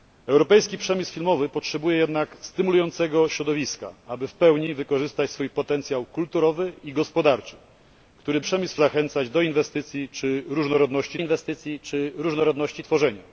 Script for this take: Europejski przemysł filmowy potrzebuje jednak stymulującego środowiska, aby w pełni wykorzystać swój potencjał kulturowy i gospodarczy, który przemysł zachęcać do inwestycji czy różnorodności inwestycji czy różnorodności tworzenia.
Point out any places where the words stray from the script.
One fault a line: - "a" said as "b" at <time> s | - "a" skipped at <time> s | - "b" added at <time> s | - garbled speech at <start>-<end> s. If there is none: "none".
none